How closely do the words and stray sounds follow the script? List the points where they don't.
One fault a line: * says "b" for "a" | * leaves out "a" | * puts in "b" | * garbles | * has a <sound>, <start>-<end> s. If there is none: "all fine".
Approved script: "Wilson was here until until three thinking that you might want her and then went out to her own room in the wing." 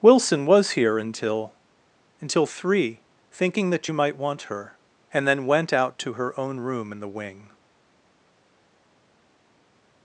all fine